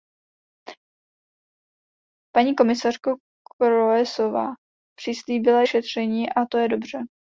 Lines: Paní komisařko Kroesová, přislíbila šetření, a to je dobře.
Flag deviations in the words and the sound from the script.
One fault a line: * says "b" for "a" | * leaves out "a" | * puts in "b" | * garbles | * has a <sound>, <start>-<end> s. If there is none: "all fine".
all fine